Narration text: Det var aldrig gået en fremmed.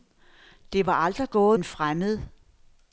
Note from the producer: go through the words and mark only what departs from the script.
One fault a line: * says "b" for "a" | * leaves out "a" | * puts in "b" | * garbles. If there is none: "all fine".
all fine